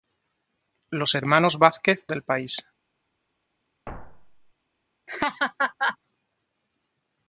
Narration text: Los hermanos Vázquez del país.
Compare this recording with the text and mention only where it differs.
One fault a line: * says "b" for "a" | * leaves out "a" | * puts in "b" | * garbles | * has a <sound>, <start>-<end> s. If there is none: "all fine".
* has a thud, 3.9-4.5 s
* has a laugh, 5.1-6.0 s